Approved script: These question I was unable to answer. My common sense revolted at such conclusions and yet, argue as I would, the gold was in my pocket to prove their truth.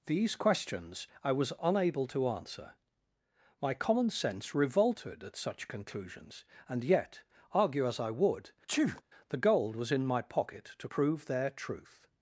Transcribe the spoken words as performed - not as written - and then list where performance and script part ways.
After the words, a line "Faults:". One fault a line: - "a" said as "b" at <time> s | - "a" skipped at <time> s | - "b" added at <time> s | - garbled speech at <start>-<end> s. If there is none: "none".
These questions I was unable to answer. My common sense revolted at such conclusions and yet, argue as I would, the gold was in my pocket to prove their truth.
Faults:
- "question" said as "questions" at 0.3 s